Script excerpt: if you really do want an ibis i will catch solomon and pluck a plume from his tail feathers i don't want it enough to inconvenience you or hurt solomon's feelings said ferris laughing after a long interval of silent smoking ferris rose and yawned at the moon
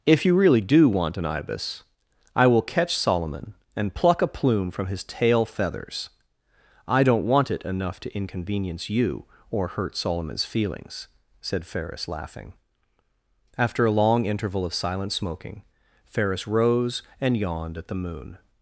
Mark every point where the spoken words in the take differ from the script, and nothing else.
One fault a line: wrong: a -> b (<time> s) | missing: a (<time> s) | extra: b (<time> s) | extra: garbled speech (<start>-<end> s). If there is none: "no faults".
no faults